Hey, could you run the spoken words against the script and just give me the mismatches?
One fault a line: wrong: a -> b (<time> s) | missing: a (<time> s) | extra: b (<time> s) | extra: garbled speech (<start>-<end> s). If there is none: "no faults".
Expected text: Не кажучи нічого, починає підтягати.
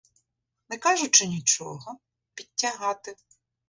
missing: починає (2.0 s)